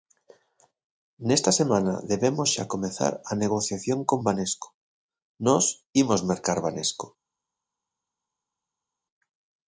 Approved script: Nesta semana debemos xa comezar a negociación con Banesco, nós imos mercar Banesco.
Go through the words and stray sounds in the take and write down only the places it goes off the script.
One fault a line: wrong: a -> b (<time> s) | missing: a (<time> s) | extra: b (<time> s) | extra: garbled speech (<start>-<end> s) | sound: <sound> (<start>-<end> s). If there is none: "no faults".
no faults